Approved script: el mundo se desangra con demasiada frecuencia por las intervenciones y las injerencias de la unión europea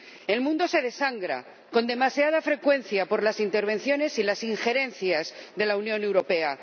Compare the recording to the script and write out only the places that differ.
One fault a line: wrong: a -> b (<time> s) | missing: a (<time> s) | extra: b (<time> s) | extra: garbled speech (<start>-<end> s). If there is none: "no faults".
no faults